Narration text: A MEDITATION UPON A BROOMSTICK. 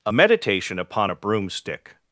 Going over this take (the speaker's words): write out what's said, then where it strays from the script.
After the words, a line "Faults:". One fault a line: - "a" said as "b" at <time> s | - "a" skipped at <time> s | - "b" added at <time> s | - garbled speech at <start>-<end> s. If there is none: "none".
A MEDITATION UPON A BROOMSTICK.
Faults:
none